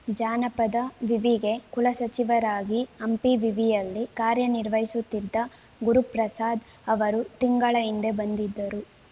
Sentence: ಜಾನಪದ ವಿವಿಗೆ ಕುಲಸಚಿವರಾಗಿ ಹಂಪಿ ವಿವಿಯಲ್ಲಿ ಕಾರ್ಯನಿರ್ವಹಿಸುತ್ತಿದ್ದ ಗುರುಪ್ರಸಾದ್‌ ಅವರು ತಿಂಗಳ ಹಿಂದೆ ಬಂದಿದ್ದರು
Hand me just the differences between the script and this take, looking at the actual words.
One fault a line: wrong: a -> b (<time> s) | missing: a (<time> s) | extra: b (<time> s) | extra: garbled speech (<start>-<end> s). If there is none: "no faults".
no faults